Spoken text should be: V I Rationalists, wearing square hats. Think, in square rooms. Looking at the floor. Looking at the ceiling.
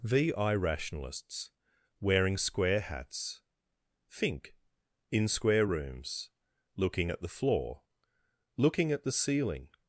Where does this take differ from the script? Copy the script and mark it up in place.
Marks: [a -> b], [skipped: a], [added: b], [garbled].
V I Rationalists, wearing square hats. Think, in square rooms. Looking at the floor. Looking at the ceiling.